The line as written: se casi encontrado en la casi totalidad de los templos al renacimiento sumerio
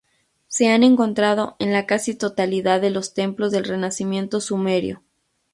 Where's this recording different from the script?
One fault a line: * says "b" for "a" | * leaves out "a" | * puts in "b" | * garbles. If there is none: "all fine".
* says "han" for "casi"
* says "del" for "al"